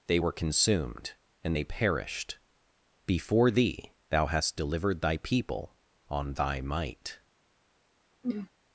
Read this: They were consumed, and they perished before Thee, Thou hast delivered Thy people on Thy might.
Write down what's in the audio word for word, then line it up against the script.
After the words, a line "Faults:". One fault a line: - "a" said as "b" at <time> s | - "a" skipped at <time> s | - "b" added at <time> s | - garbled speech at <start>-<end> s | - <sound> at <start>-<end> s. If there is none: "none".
They were consumed, and they perished before Thee, Thou hast delivered Thy people on Thy might.
Faults:
- throat clearing at 8.2-8.5 s